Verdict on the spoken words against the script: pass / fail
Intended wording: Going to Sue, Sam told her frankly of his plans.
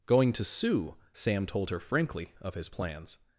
pass